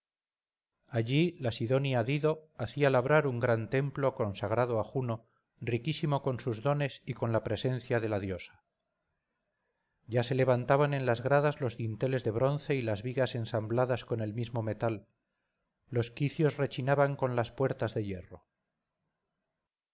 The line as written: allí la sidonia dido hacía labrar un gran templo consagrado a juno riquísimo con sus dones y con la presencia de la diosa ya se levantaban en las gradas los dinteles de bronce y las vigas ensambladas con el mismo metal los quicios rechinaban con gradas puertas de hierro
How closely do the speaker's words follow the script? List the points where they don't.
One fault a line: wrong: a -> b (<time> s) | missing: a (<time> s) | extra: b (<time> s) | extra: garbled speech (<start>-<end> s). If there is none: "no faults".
wrong: gradas -> las (17.4 s)